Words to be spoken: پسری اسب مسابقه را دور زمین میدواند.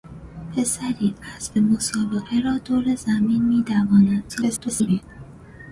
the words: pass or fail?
fail